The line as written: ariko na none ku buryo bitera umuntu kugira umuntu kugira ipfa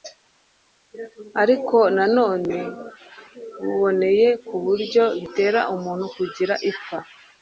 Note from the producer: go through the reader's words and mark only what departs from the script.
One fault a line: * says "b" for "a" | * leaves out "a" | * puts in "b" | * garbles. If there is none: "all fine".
* puts in "buboneye"
* leaves out "umuntu kugira"